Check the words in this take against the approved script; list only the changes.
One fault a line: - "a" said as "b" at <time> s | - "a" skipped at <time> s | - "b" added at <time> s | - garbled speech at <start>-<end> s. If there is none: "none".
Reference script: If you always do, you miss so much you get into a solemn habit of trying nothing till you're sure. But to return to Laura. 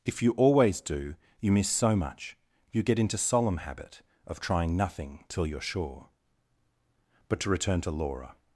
- "a" skipped at 3.2 s